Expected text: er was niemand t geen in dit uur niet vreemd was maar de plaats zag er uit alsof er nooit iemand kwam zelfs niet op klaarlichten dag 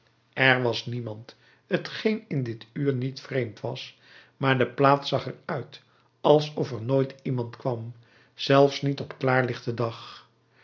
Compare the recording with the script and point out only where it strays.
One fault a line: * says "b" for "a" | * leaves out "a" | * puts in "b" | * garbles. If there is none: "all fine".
all fine